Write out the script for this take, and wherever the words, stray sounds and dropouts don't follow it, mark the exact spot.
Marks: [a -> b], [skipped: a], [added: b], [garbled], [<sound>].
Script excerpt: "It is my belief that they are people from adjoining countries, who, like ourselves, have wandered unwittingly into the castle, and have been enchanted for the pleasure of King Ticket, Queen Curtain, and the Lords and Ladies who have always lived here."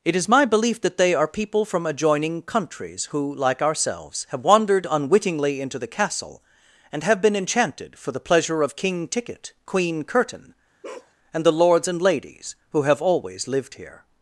"It is my belief that they are people from adjoining countries, who, like ourselves, have wandered unwittingly into the castle, and have been enchanted for the pleasure of King Ticket, Queen Curtain, [bark] and the Lords and Ladies who have always lived here."